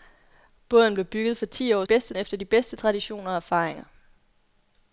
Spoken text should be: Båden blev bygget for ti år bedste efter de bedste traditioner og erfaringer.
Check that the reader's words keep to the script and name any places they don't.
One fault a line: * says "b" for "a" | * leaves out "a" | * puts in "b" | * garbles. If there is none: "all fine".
all fine